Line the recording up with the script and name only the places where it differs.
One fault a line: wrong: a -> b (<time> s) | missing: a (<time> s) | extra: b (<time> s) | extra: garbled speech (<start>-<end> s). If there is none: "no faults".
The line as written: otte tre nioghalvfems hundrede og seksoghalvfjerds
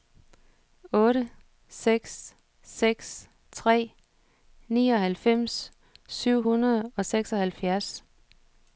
extra: seks seks (1.7 s)
extra: syv (6.1 s)